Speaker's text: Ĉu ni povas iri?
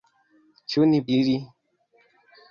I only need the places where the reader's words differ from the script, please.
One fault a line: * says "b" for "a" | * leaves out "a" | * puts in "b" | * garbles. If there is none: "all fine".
* leaves out "povas"